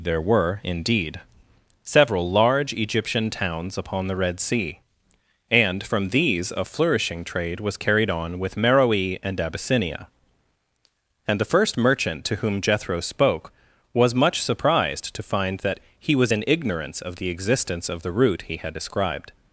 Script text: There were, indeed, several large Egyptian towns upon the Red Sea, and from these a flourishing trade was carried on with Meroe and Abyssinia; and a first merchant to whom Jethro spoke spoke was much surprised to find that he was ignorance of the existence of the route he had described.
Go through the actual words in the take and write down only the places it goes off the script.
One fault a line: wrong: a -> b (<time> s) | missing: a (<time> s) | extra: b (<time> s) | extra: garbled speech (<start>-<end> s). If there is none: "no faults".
wrong: a -> the (11.4 s)
missing: spoke (13.5 s)
extra: in (16.3 s)